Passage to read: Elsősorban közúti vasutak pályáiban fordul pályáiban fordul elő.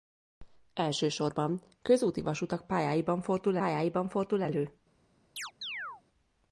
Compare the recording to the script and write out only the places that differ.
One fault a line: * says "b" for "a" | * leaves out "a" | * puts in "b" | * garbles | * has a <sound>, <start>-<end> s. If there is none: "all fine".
* has a chirp, 5.4-6.0 s